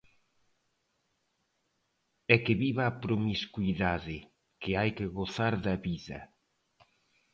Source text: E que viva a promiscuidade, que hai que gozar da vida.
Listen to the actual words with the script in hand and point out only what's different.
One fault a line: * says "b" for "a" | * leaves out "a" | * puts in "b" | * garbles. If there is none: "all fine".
all fine